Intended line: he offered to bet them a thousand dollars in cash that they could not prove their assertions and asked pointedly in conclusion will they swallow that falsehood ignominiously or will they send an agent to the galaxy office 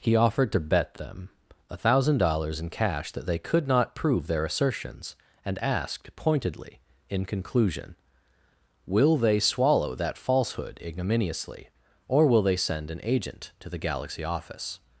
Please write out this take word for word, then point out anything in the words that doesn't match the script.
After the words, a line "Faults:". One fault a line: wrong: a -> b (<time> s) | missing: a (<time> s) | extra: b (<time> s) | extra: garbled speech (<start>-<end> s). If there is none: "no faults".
he offered to bet them a thousand dollars in cash that they could not prove their assertions and asked pointedly in conclusion will they swallow that falsehood ignominiously or will they send an agent to the galaxy office
Faults:
no faults